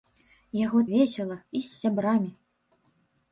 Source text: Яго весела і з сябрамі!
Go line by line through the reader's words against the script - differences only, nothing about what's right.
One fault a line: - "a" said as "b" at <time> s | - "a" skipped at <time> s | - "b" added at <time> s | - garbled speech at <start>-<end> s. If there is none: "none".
none